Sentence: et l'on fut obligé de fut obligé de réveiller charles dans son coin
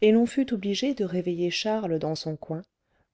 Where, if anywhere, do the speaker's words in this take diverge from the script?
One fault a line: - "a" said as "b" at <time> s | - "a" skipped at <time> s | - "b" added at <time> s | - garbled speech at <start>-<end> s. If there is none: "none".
- "fut obligé de" skipped at 1.1 s